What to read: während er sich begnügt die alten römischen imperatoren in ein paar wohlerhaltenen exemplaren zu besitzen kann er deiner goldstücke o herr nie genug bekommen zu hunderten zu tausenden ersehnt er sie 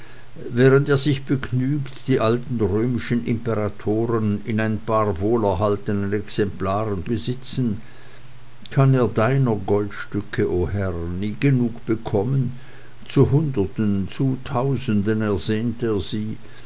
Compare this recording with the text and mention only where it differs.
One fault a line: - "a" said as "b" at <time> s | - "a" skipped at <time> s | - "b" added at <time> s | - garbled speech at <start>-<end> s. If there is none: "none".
- "zu" skipped at 7.1 s